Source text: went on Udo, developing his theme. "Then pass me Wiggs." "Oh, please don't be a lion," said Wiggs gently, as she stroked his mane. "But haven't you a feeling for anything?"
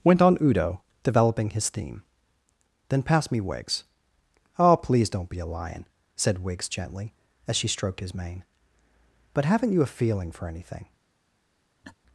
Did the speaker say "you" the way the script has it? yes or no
yes